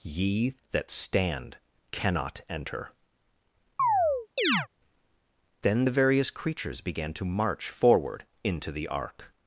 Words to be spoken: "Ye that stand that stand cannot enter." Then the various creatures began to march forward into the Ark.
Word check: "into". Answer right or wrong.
right